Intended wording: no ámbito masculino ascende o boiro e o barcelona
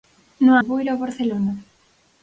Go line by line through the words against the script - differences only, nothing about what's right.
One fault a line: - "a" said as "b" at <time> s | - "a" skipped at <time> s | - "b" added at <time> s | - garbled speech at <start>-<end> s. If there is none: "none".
- "ámbito masculino ascende" skipped at 0.5 s